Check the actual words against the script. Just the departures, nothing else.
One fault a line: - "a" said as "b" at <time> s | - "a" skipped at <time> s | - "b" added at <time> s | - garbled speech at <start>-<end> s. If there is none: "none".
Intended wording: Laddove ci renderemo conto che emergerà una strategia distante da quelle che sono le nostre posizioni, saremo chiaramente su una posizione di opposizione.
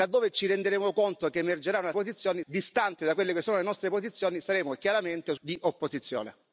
- "strategia" said as "posizioni" at 1.9 s
- "una posizione" skipped at 5.4 s